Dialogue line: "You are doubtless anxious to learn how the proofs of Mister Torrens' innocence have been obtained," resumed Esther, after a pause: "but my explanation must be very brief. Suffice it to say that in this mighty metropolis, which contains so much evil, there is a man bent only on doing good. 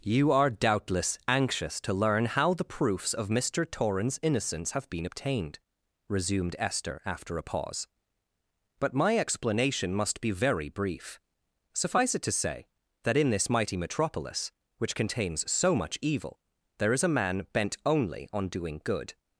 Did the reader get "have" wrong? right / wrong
right